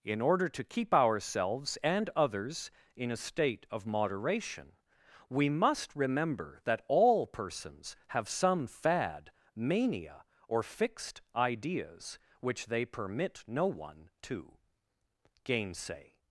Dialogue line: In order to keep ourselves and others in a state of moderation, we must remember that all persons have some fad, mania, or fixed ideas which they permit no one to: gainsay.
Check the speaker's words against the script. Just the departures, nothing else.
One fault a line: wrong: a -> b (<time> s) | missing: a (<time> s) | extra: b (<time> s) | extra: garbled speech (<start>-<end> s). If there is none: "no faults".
no faults